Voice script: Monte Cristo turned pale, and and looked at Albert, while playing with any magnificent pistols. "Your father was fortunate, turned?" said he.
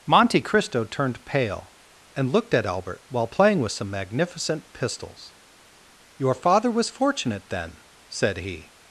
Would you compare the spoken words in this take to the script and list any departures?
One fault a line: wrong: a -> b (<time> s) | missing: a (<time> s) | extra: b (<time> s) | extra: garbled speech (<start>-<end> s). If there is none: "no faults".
missing: and (2.3 s)
wrong: any -> some (3.7 s)
wrong: turned -> then (7.5 s)